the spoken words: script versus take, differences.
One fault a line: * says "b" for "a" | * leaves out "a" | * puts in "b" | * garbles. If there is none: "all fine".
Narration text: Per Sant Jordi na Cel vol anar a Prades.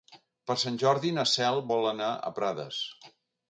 all fine